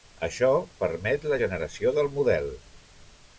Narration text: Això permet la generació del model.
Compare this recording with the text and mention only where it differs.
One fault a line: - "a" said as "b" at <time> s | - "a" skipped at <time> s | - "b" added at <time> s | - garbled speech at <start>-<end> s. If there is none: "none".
none